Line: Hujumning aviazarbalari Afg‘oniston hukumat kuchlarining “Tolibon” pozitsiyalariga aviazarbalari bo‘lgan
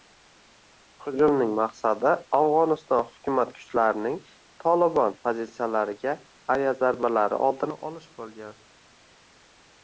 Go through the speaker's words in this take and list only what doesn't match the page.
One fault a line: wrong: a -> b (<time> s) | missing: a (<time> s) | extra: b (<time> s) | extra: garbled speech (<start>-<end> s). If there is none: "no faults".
wrong: aviazarbalari -> maqsadi (1.6 s)
extra: oldini olish (7.5 s)